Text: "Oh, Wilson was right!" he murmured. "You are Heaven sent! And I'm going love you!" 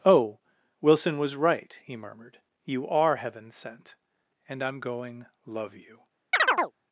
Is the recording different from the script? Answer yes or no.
no